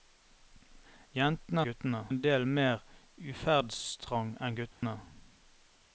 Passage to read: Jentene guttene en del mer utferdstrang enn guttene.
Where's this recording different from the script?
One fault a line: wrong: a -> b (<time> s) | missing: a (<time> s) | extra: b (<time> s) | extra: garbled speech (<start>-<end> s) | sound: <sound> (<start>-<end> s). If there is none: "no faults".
sound: dropout (4.7-4.8 s)